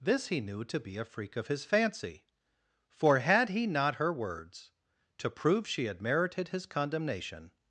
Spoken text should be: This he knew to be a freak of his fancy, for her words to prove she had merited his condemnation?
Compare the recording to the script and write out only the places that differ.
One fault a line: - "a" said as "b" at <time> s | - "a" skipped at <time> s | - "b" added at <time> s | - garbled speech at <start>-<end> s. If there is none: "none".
- "had he not" added at 3.2 s